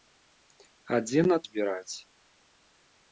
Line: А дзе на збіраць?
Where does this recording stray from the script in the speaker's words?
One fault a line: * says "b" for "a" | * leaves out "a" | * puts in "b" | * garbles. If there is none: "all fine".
all fine